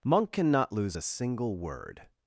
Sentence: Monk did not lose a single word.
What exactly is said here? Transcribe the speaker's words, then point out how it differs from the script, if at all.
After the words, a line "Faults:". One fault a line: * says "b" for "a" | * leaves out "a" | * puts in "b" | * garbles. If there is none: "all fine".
Monk cannot lose a single word.
Faults:
* says "cannot" for "did not"